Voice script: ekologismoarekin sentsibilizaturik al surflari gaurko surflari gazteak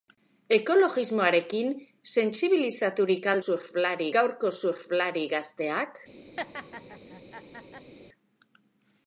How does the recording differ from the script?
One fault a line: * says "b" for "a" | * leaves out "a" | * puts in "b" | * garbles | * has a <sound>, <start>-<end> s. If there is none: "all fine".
* has a laugh, 6.4-7.9 s